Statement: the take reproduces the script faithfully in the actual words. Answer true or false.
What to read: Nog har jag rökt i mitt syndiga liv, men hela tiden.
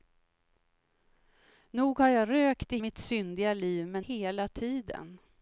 true